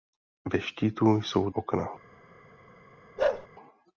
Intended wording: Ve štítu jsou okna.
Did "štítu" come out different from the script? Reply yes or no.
no